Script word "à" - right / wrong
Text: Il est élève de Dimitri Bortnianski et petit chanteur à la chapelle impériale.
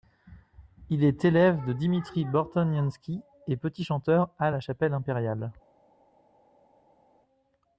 right